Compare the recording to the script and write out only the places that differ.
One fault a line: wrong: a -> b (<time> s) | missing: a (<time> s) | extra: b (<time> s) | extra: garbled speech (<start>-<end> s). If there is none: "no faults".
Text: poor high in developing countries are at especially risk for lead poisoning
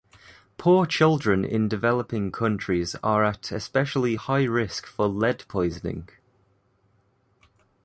wrong: high -> children (0.9 s)
extra: high (4.1 s)